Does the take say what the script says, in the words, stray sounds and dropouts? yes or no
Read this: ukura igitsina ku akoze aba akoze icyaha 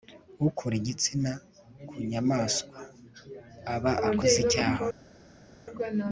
no